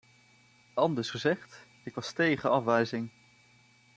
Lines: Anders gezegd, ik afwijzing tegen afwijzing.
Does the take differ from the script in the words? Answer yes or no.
yes